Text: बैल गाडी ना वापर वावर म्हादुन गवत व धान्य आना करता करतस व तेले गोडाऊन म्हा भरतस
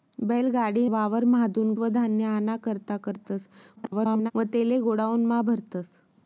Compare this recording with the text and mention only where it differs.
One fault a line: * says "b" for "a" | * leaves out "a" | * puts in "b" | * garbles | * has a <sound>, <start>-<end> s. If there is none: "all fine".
* leaves out "ना वापर"
* leaves out "गवत"
* garbles